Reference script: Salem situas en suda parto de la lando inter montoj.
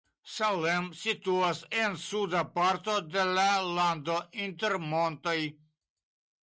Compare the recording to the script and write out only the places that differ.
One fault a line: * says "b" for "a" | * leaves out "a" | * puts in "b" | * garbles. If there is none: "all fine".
all fine